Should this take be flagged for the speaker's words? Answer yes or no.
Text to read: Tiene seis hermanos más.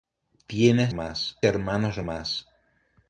yes